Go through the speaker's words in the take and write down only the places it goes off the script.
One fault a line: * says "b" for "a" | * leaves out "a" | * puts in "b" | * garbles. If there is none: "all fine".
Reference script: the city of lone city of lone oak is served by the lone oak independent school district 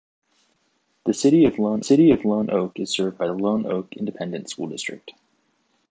all fine